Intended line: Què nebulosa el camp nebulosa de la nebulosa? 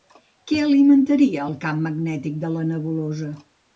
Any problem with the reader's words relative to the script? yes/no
yes